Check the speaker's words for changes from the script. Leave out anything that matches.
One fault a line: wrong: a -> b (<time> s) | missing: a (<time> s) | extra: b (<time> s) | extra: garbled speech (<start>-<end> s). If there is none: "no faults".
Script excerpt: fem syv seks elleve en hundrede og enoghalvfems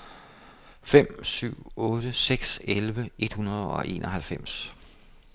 extra: otte (1.8 s)
wrong: en -> et (3.2 s)